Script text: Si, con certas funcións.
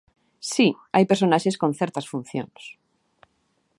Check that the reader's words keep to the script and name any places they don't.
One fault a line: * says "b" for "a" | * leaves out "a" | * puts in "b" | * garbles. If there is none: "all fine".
* puts in "hai personaxes"